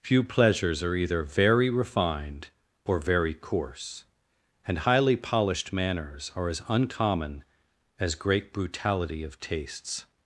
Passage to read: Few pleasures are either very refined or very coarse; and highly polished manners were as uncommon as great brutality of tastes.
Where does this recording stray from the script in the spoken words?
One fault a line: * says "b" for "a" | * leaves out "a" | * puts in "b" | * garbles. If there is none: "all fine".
* says "are" for "were"